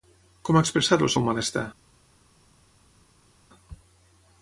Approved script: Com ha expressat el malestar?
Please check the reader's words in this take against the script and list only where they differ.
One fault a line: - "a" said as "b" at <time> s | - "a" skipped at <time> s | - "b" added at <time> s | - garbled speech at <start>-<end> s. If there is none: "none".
- "seu" added at 1.1 s